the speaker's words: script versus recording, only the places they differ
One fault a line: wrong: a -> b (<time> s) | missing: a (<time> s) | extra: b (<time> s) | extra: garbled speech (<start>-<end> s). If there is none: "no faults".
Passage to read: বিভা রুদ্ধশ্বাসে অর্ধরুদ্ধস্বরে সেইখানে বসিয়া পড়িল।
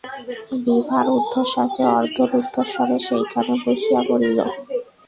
no faults